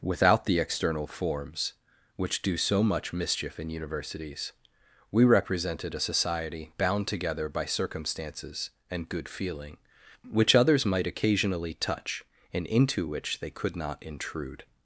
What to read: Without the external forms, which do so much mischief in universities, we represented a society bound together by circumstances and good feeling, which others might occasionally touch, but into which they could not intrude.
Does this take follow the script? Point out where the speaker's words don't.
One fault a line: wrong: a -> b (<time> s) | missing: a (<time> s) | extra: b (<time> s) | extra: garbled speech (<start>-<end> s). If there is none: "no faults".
wrong: but -> and (12.5 s)